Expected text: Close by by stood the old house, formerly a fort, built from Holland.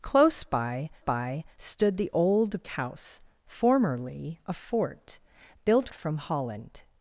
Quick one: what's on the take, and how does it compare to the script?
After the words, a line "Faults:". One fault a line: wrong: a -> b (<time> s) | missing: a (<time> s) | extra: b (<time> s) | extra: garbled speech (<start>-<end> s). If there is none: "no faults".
Close by by stood the old house, formerly a fort, built from Holland.
Faults:
no faults